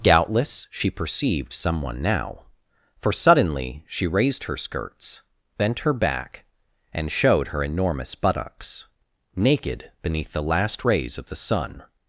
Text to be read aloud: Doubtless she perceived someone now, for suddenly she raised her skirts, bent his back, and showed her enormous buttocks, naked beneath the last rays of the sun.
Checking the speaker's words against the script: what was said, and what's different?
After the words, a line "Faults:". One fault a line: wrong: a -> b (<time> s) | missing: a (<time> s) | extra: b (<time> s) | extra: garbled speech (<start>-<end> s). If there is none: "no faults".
Doubtless she perceived someone now, for suddenly she raised her skirts, bent her back, and showed her enormous buttocks, naked beneath the last rays of the sun.
Faults:
wrong: his -> her (5.8 s)